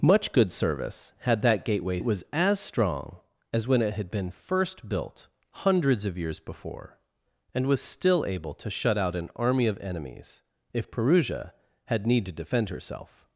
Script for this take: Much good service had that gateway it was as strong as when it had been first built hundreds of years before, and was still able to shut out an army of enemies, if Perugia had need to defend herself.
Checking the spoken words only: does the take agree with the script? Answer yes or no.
yes